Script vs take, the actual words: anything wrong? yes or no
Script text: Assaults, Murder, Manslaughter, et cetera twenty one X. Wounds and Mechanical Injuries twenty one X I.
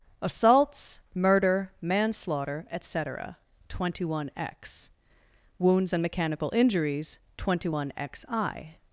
no